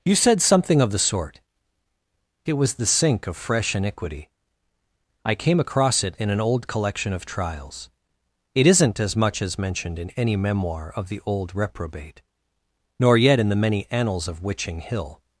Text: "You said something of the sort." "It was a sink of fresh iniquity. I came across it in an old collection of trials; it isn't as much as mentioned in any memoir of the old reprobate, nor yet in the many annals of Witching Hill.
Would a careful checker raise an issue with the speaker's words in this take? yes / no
yes